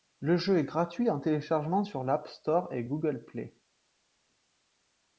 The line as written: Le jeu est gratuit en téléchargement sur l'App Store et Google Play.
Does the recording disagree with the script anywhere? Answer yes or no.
no